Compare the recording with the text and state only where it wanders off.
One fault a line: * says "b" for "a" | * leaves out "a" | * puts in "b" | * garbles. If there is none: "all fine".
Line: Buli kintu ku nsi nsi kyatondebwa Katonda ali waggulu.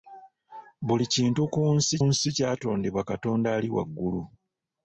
all fine